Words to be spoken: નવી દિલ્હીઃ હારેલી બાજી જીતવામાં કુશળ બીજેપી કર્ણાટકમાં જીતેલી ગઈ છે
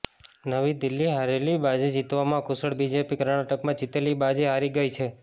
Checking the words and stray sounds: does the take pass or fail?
fail